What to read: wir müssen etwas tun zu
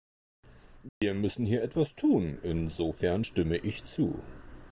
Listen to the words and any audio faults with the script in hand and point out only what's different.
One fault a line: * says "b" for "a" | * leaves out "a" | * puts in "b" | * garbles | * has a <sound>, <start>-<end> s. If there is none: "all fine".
* has a dropout, 0.9-1.0 s
* puts in "hier"
* puts in "insofern stimme ich"